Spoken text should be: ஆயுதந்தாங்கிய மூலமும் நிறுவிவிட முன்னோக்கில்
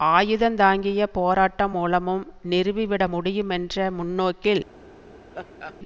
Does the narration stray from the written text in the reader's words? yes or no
yes